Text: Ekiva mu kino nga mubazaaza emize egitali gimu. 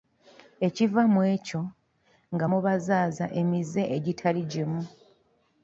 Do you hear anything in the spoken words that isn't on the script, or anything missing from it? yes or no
yes